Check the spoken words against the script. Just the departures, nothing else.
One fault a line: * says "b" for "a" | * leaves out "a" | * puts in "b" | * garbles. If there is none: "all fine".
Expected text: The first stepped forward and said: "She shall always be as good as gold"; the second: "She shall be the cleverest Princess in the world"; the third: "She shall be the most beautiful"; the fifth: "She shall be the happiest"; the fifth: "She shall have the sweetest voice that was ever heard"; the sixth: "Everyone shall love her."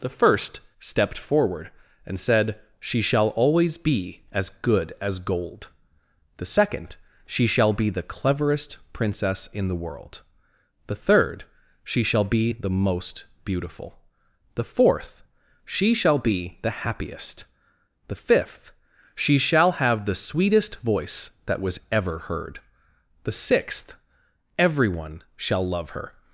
* says "fourth" for "fifth"